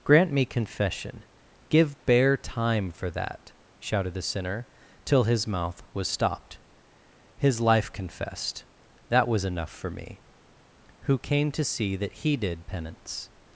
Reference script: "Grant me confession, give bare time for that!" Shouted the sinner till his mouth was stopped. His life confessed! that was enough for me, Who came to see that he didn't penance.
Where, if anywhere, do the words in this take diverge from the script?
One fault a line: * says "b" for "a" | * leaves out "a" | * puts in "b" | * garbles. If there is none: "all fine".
* says "did" for "didn't"